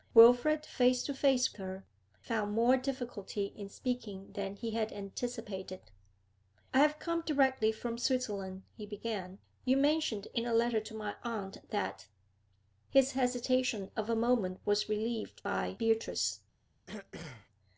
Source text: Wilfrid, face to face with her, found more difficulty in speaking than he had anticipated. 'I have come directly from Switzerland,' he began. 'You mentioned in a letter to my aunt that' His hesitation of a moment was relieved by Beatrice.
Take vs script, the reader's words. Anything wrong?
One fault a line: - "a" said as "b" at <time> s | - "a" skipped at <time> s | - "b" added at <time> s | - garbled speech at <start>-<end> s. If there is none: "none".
- "with" skipped at 1.5 s